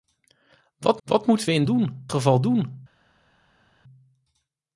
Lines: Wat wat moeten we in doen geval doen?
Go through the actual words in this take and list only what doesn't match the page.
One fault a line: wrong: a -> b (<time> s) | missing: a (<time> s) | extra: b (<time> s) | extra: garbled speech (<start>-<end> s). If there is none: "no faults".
no faults